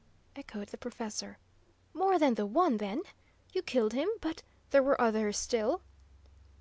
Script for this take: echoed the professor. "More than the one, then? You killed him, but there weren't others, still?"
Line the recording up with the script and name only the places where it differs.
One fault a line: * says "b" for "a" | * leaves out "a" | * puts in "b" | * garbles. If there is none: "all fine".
* says "were" for "weren't"